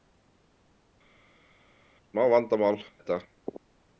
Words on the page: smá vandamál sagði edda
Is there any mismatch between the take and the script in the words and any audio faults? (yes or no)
yes